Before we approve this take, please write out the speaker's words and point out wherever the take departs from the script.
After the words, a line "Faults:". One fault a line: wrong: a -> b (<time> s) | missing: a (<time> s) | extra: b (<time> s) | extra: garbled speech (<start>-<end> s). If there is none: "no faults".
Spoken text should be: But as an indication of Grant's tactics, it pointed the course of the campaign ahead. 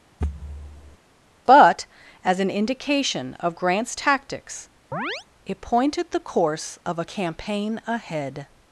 But as an indication of Grant's tactics, it pointed the course of a campaign ahead.
Faults:
wrong: the -> a (7.0 s)